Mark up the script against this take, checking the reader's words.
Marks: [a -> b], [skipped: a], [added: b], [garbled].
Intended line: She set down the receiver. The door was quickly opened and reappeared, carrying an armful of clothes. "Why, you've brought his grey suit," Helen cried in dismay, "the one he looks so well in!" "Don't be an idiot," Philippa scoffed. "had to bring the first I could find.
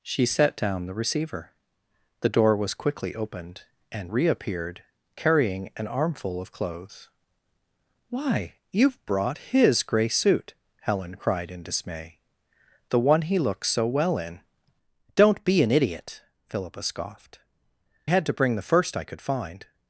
She set down the receiver. The door was quickly opened and reappeared, carrying an armful of clothes. "Why, you've brought his grey suit," Helen cried in dismay, "the one he looks so well in!" "Don't be an idiot," Philippa scoffed. "had to bring the first I could find.